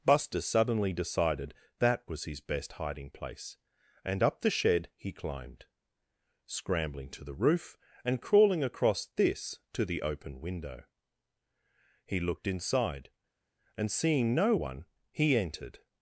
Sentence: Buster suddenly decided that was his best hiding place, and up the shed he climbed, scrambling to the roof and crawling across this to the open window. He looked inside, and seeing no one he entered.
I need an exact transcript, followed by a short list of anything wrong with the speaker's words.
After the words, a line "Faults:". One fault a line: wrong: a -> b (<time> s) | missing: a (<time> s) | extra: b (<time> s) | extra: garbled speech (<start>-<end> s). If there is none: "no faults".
Buster suddenly decided that was his best hiding place, and up the shed he climbed, scrambling to the roof and crawling across this to the open window. He looked inside, and seeing no one he entered.
Faults:
no faults